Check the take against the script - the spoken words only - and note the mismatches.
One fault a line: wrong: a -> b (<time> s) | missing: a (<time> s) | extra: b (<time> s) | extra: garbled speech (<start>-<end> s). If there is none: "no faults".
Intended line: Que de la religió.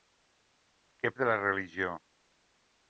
no faults